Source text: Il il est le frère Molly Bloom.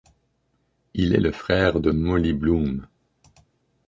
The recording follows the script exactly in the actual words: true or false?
false